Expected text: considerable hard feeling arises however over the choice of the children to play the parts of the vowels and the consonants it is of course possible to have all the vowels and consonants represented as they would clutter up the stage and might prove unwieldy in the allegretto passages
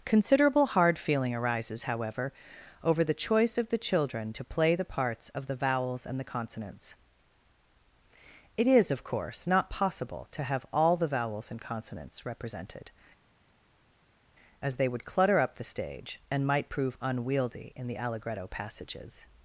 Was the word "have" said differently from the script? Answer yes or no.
no